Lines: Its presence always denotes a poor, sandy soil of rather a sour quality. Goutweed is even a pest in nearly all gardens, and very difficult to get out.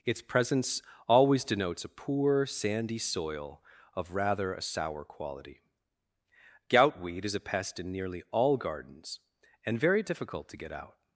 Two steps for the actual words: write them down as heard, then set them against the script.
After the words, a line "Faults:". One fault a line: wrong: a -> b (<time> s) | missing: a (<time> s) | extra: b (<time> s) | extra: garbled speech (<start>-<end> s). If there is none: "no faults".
Its presence always denotes a poor, sandy soil of rather a sour quality. Goutweed is a pest in nearly all gardens, and very difficult to get out.
Faults:
missing: even (7.3 s)